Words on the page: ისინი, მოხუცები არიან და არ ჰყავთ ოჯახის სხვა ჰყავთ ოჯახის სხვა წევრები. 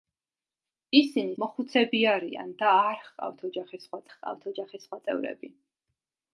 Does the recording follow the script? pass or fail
pass